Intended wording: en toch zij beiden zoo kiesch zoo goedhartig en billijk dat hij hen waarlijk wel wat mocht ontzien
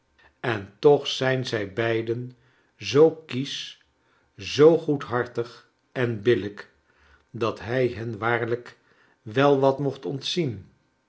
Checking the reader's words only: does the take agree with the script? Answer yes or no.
no